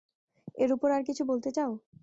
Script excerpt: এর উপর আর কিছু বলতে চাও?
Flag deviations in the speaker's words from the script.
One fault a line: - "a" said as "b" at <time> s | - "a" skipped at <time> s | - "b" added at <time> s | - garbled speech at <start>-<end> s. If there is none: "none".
none